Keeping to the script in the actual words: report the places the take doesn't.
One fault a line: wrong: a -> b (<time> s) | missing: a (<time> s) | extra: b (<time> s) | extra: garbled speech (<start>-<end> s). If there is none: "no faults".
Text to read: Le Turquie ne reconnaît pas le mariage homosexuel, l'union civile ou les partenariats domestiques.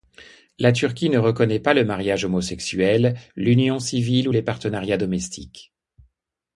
wrong: Le -> La (0.6 s)